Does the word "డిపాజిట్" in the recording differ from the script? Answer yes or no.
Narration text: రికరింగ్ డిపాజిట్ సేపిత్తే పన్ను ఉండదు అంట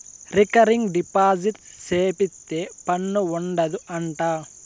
no